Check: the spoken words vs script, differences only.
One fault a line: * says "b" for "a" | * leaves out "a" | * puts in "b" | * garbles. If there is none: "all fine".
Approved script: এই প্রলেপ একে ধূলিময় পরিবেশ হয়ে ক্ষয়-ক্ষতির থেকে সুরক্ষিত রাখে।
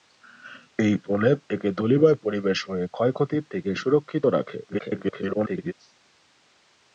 * garbles